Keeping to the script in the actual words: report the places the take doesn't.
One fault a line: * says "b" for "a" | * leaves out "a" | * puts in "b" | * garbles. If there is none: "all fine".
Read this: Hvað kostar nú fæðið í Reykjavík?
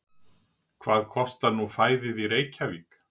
all fine